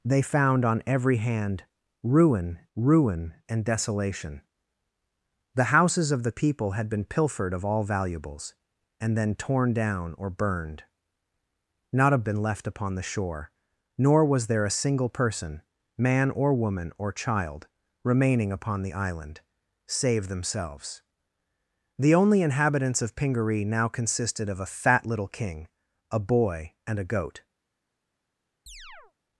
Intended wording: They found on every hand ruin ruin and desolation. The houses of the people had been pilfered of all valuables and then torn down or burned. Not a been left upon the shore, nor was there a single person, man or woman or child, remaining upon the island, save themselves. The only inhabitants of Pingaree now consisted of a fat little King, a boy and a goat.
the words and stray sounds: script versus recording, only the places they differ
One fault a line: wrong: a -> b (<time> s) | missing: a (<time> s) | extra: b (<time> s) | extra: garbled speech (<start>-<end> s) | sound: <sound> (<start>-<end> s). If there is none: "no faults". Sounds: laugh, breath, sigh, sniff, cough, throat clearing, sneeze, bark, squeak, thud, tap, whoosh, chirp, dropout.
sound: chirp (28.7-29.1 s)